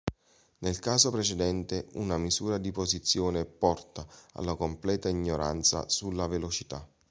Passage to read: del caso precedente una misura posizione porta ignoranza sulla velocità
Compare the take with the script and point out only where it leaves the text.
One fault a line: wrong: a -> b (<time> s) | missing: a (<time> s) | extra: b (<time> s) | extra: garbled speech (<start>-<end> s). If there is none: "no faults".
wrong: del -> nel (0.6 s)
extra: di (2.6 s)
extra: alla completa (4.3 s)